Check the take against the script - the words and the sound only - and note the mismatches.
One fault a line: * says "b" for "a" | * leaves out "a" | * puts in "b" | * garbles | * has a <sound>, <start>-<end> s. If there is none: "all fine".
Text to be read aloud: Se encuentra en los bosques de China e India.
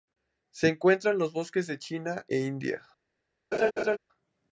* has a laugh, 3.5-4.0 s